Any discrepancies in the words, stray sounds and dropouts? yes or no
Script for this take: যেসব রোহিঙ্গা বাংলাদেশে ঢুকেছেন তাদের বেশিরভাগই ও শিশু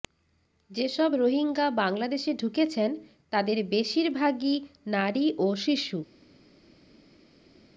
yes